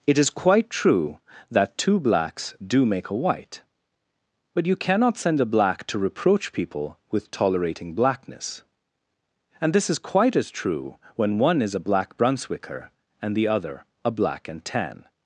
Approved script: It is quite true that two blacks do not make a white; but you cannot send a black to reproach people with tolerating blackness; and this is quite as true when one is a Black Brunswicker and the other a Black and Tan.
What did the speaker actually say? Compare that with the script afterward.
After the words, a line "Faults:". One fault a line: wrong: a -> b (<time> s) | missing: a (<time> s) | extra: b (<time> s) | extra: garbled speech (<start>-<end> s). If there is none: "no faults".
It is quite true that two blacks do make a white; but you cannot send a black to reproach people with tolerating blackness; and this is quite as true when one is a Black Brunswicker and the other a Black and Tan.
Faults:
missing: not (2.9 s)